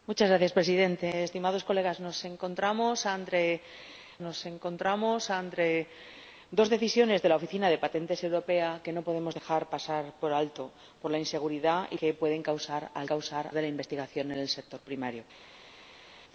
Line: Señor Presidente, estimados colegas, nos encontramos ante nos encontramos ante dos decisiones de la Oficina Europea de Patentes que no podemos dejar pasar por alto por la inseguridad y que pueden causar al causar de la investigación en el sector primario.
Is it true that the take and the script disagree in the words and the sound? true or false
false